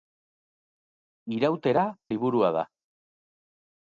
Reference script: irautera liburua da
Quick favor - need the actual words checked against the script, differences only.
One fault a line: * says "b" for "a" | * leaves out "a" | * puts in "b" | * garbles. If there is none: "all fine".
all fine